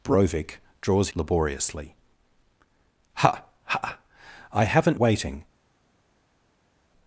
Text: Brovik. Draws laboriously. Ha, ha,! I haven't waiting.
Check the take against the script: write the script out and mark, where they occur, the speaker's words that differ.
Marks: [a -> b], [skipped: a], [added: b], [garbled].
Brovik. Draws laboriously. Ha, ha,! I haven't waiting.